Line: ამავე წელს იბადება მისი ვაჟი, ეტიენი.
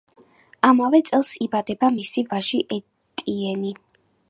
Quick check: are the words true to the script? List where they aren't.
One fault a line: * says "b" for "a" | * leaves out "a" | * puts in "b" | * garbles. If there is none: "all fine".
all fine